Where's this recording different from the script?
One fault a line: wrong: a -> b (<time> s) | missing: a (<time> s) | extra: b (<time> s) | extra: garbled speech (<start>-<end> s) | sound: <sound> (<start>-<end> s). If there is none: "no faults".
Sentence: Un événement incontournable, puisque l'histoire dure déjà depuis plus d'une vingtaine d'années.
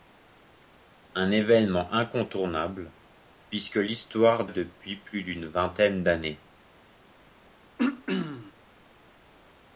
missing: dure déjà (4.5 s)
sound: throat clearing (7.8-8.5 s)